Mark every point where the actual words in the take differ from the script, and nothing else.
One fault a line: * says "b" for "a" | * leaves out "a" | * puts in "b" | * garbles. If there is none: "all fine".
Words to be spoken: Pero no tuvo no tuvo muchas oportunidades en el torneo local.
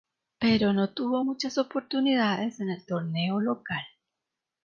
* leaves out "no tuvo"